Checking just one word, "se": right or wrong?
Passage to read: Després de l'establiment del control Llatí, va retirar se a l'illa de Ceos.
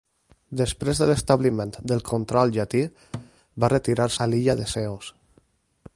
wrong